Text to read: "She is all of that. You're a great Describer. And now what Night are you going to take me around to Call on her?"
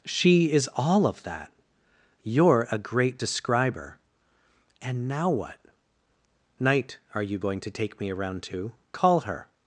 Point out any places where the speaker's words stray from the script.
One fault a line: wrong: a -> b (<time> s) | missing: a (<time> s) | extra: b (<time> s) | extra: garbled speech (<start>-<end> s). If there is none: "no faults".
missing: on (9.2 s)